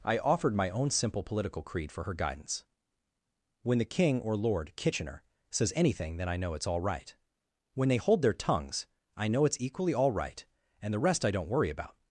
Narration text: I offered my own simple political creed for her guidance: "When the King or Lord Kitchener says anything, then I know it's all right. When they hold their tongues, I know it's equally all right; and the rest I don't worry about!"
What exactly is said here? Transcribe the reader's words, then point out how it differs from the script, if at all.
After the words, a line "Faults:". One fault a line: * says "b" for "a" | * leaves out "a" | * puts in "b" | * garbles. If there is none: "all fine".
I offered my own simple political creed for her guidance: "When the King or Lord Kitchener says anything, then I know it's all right. When they hold their tongues, I know it's equally all right; and the rest I don't worry about!"
Faults:
all fine